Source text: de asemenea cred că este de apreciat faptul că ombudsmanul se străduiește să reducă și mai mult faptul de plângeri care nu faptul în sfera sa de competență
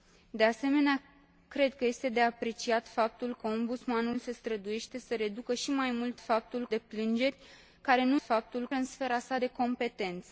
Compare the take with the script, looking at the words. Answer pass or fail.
pass